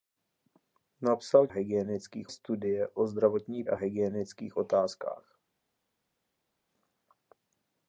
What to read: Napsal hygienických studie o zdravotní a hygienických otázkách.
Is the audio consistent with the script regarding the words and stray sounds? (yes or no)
yes